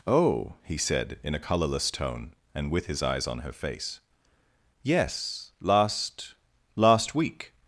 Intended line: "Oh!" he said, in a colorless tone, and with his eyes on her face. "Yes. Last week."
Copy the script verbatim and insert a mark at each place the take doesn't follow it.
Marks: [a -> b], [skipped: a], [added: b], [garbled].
"Oh!" he said, in a colorless tone, and with his eyes on her face. "Yes. Last [added: Last] week."